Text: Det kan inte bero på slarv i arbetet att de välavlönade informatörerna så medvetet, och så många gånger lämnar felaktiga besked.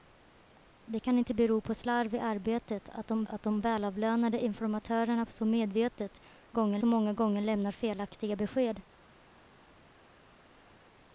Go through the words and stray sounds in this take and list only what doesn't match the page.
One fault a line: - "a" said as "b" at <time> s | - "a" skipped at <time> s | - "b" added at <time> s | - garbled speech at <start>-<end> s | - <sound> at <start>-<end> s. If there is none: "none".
- "att de" added at 3.2 s
- "och" said as "gånger" at 6.5 s